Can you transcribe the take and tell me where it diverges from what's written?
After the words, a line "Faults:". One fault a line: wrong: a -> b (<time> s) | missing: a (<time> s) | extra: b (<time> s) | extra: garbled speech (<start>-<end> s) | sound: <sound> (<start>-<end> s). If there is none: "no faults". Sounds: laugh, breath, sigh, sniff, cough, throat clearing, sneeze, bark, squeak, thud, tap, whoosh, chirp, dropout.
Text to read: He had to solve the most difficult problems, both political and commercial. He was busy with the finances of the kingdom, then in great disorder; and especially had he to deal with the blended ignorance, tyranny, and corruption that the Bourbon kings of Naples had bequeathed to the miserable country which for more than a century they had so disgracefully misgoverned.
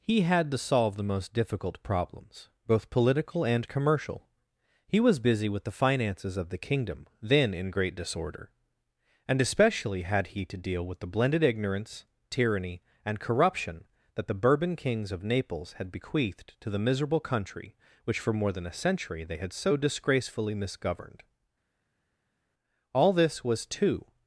He had to solve the most difficult problems, both political and commercial. He was busy with the finances of the kingdom, then in great disorder; and especially had he to deal with the blended ignorance, tyranny, and corruption that the Bourbon kings of Naples had bequeathed to the miserable country which for more than a century they had so disgracefully misgoverned. All this was too
Faults:
extra: All this was too (22.9 s)